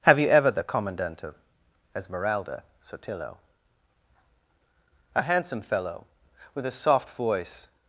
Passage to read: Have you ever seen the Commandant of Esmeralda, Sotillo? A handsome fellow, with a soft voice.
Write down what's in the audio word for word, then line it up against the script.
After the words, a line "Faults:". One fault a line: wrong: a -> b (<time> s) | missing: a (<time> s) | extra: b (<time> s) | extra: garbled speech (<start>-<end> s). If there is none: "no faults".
Have you ever the Commandant of Esmeralda, Sotillo? A handsome fellow, with a soft voice.
Faults:
missing: seen (0.5 s)